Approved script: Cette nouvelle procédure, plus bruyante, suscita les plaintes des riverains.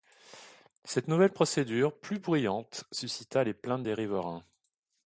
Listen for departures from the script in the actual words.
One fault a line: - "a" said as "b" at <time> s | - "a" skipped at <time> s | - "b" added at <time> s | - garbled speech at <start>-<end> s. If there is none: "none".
none